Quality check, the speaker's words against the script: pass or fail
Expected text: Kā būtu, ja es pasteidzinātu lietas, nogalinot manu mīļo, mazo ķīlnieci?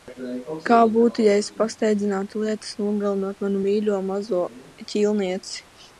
pass